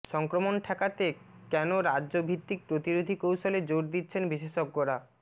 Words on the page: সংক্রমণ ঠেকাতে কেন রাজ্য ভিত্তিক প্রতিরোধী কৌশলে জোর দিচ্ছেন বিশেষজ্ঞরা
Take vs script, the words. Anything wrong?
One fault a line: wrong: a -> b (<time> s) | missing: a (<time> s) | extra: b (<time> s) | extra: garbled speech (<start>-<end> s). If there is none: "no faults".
no faults